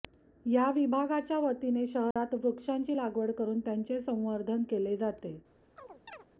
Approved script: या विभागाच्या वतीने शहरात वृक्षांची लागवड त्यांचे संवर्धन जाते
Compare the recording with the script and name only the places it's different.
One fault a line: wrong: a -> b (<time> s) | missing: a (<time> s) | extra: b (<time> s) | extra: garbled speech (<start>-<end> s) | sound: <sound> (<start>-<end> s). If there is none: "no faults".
sound: dropout (2.1-2.2 s)
extra: करून (3.3 s)
extra: केले (4.7 s)
sound: chirp (5.8-6.3 s)